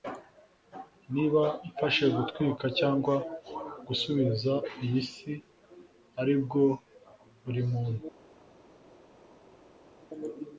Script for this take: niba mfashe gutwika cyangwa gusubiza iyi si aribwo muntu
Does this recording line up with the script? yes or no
no